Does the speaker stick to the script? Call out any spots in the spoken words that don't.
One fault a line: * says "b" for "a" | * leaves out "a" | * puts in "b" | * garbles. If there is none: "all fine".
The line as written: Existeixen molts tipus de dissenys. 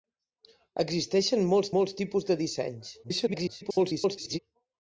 * puts in "molts"
* garbles